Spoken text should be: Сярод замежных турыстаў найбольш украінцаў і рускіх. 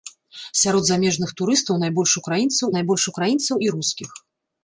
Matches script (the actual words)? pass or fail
fail